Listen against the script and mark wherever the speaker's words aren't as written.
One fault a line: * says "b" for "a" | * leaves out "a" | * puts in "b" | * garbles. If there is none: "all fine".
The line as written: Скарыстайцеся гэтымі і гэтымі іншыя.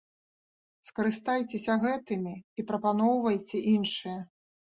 * says "прапаноўвайце" for "гэтымі"